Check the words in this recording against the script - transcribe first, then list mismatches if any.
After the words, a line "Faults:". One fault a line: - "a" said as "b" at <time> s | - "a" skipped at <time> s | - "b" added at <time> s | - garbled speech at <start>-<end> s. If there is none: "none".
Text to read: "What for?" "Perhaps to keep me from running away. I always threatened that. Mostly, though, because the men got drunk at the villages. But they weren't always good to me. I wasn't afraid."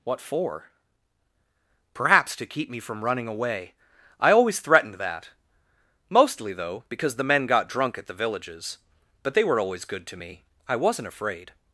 "What for?" "Perhaps to keep me from running away. I always threatened that. Mostly, though, because the men got drunk at the villages. But they were always good to me. I wasn't afraid."
Faults:
- "weren't" said as "were" at 9.4 s